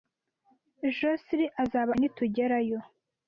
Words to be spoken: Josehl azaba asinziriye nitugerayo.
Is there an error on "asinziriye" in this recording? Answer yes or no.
yes